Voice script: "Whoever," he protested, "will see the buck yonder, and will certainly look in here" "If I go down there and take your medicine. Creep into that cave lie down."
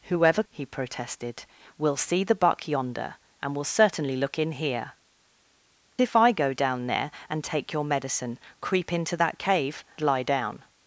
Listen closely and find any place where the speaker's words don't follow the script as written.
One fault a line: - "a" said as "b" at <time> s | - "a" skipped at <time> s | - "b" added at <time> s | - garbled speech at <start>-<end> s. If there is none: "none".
none